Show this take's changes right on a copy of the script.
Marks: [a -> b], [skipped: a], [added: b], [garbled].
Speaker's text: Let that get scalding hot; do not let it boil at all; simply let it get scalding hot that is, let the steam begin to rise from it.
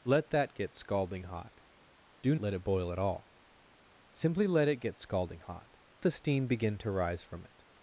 Let that get scalding hot; do [skipped: not] let it boil at all; simply let it get scalding hot [skipped: that is, let] the steam begin to rise from it.